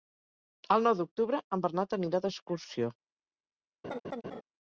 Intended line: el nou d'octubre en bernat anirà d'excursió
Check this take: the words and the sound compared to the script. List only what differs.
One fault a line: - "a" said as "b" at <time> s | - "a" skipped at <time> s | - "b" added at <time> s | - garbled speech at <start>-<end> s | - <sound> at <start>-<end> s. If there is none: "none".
- laugh at 3.8-4.4 s